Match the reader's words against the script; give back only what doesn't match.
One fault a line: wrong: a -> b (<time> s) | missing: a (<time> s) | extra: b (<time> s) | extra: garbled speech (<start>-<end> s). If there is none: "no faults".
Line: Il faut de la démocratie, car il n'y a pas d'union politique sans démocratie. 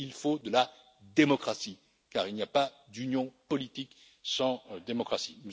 no faults